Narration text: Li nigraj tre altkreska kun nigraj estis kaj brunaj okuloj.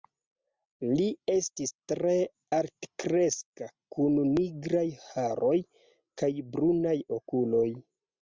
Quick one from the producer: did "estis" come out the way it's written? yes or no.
no